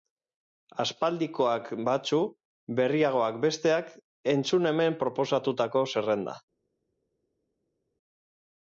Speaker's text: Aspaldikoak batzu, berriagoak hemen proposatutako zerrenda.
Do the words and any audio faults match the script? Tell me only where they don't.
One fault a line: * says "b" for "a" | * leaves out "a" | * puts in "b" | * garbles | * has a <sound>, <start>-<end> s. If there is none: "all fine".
* puts in "besteak entzun"